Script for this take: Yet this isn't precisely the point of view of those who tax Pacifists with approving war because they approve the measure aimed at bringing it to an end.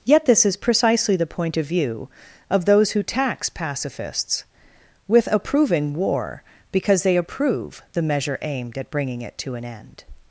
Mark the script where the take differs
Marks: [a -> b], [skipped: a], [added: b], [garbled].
Yet this [isn't -> is] precisely the point of view of those who tax Pacifists with approving war because they approve the measure aimed at bringing it to an end.